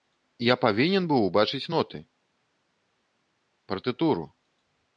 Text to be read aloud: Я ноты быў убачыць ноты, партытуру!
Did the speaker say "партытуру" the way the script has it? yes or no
yes